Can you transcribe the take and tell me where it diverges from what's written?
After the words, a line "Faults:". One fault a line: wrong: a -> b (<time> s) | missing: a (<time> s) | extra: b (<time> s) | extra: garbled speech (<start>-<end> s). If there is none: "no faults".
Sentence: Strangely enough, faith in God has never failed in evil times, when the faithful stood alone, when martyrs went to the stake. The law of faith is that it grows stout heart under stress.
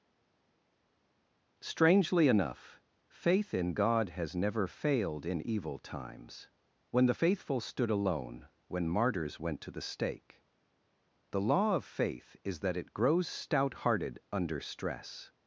Strangely enough, faith in God has never failed in evil times, when the faithful stood alone, when martyrs went to the stake. The law of faith is that it grows stout hearted under stress.
Faults:
wrong: heart -> hearted (13.8 s)